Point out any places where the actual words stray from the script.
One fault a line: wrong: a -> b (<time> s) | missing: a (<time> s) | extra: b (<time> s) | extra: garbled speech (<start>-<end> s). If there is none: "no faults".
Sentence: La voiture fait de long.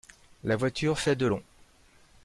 no faults